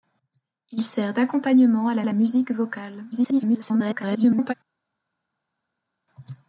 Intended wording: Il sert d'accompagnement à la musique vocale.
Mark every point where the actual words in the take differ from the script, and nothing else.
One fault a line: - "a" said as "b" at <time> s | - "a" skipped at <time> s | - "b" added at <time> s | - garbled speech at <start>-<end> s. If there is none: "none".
- "la" added at 2.0 s
- garbled speech at 3.1-4.5 s